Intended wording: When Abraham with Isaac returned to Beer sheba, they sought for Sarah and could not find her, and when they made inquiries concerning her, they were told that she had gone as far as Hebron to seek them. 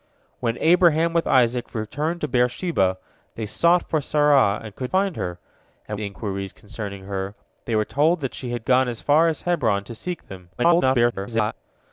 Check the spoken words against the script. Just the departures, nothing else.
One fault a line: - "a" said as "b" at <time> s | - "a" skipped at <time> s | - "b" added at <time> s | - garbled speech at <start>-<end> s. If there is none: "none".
- "not" skipped at 4.9 s
- "when they made" skipped at 6.0 s
- garbled speech at 10.6-11.5 s